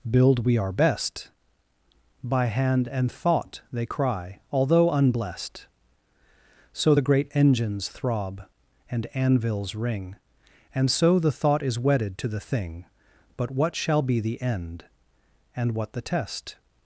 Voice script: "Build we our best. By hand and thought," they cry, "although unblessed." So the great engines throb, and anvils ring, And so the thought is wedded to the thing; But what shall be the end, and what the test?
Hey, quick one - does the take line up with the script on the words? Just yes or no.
yes